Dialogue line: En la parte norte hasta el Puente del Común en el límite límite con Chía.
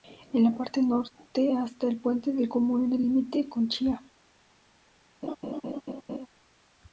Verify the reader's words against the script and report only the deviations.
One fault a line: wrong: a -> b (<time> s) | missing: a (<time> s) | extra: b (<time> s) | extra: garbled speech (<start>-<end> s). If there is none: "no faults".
missing: límite (3.5 s)